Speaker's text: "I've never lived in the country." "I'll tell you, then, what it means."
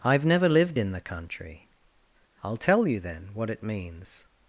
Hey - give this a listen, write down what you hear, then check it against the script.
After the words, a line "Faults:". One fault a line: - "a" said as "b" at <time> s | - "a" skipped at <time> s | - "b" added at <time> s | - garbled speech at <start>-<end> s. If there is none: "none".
"I've never lived in the country." "I'll tell you, then, what it means."
Faults:
none